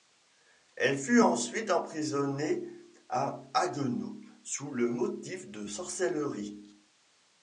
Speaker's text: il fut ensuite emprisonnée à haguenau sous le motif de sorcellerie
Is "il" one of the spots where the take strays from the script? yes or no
yes